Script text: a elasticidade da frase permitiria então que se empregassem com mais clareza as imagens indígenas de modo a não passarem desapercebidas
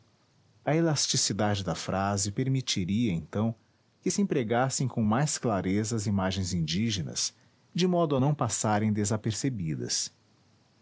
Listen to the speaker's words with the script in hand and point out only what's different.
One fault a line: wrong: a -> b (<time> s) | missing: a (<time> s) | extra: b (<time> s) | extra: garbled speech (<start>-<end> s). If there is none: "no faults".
no faults